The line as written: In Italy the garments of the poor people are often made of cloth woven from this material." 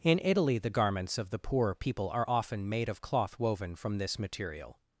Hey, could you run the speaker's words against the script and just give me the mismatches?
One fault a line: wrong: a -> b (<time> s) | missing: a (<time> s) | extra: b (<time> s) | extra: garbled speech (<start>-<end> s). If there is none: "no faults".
no faults